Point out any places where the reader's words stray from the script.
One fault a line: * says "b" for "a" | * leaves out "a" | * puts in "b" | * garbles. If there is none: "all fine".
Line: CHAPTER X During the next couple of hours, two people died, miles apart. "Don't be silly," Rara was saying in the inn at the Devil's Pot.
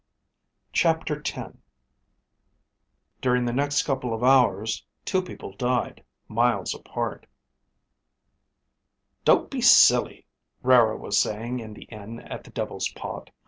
all fine